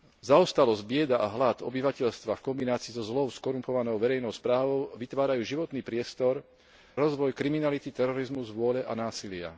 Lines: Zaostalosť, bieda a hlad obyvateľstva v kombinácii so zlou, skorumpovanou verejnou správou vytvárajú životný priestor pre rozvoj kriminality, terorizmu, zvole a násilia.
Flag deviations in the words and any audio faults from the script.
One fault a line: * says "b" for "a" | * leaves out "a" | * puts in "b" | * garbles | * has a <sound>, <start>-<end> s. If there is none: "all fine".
* leaves out "pre"